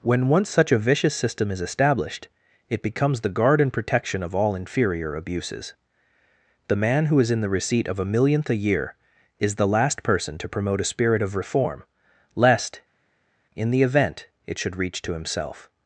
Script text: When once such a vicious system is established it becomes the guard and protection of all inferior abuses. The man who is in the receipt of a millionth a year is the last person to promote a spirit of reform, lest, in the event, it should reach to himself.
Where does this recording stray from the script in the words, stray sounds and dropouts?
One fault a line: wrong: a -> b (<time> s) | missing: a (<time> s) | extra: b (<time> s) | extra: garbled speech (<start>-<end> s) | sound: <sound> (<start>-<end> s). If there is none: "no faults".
no faults